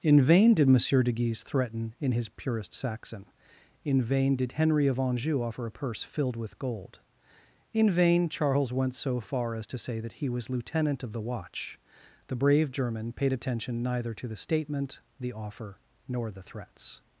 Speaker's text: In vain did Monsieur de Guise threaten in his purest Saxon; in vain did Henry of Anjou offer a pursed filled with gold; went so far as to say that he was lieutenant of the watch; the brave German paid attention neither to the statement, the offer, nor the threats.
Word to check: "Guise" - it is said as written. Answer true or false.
true